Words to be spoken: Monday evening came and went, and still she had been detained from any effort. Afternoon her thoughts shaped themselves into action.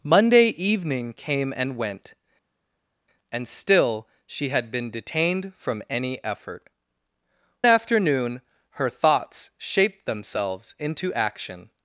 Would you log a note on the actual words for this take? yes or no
no